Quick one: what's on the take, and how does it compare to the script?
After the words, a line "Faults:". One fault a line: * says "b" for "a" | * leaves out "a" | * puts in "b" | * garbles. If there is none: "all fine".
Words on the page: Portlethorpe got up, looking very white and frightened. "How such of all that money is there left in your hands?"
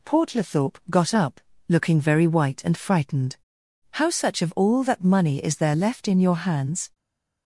Portlethorpe got up, looking very white and frightened. "How such of all that money is there left in your hands?"
Faults:
all fine